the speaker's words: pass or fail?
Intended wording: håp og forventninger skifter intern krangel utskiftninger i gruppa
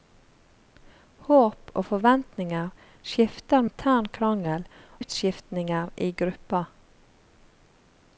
pass